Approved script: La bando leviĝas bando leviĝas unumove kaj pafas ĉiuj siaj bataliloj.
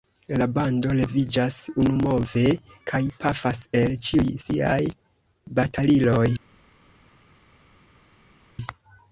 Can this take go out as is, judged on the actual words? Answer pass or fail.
fail